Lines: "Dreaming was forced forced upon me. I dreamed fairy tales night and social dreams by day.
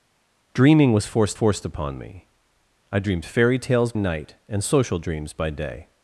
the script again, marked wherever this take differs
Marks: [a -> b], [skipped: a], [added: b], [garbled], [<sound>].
"Dreaming was forced forced upon me. I dreamed fairy tales night and social dreams by day.